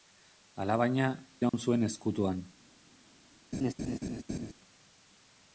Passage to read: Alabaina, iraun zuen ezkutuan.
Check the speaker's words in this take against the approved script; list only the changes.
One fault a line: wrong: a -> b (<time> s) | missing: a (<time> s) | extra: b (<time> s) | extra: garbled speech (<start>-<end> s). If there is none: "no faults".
no faults